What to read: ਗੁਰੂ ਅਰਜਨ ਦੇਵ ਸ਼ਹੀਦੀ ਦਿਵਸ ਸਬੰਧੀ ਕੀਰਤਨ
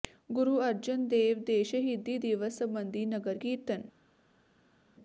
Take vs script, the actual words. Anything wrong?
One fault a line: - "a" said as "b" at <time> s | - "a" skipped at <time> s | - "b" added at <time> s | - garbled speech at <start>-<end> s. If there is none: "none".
- "ਦੇ" added at 1.4 s
- "ਨਗਰ" added at 3.1 s